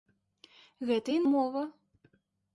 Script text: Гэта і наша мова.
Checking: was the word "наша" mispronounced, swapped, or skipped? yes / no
yes